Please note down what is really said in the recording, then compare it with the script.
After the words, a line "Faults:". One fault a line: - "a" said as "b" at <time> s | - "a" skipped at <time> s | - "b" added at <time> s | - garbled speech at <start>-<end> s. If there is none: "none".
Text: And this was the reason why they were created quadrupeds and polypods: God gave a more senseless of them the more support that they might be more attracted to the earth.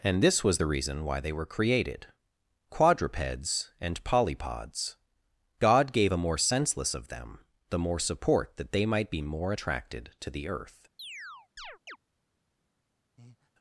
And this was the reason why they were created quadrupeds and polypods: God gave a more senseless of them the more support that they might be more attracted to the earth.
Faults:
none